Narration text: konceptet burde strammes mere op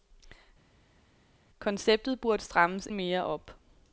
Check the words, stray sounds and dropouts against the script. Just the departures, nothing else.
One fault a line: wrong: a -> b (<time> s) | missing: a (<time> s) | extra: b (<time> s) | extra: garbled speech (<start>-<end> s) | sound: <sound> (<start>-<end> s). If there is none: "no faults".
no faults